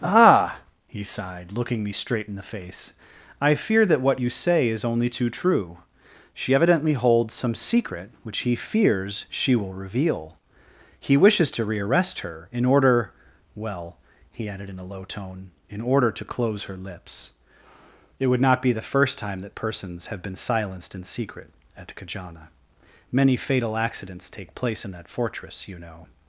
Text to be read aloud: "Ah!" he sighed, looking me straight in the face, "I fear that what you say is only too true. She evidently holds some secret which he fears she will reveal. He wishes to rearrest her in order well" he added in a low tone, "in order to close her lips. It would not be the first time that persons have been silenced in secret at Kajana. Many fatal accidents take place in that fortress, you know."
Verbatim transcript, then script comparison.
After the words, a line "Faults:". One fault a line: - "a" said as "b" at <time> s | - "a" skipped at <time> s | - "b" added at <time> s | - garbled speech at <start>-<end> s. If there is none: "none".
"Ah!" he sighed, looking me straight in the face, "I fear that what you say is only too true. She evidently holds some secret which he fears she will reveal. He wishes to rearrest her in order well" he added in a low tone, "in order to close her lips. It would not be the first time that persons have been silenced in secret at Kajana. Many fatal accidents take place in that fortress, you know."
Faults:
none